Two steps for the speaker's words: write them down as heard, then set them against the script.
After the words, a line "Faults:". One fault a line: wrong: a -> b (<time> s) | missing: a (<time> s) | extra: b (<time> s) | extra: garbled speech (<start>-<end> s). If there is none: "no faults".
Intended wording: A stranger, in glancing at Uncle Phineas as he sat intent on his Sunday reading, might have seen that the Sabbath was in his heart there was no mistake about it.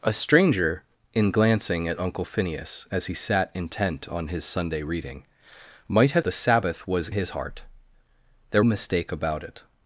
A stranger, in glancing at Uncle Phineas as he sat intent on his Sunday reading, might have the Sabbath was his heart there mistake about it.
Faults:
missing: seen that (6.2 s)
missing: in (7.1 s)
missing: was no (8.6 s)